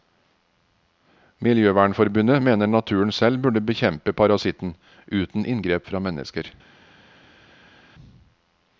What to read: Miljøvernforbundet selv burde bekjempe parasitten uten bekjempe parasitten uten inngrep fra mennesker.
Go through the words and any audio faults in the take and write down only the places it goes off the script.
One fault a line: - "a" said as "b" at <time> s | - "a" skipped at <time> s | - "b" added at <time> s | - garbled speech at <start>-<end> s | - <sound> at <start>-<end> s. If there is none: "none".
- "mener naturen" added at 2.5 s
- "bekjempe parasitten uten" skipped at 5.5 s